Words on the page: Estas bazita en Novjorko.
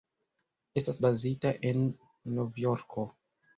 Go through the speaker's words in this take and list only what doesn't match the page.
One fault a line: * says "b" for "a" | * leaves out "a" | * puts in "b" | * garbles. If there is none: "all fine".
all fine